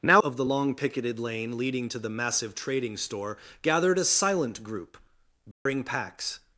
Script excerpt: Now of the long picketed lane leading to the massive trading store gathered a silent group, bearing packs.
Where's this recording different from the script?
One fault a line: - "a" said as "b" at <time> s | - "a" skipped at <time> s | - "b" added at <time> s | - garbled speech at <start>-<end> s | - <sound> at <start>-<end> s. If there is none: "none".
- dropout at 5.5-5.7 s